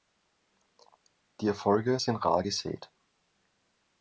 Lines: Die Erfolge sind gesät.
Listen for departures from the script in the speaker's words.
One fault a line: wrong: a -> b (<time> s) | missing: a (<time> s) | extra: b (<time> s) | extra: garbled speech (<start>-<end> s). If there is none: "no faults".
extra: rar (2.2 s)